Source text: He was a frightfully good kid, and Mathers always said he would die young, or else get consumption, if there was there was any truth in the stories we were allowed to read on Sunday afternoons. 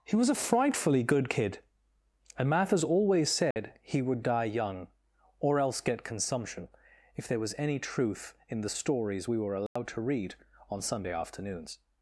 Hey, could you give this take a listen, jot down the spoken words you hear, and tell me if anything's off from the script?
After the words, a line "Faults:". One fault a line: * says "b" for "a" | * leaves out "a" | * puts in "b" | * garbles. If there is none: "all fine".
He was a frightfully good kid, and Mathers always said he would die young, or else get consumption, if there was any truth in the stories we were allowed to read on Sunday afternoons.
Faults:
* leaves out "there was"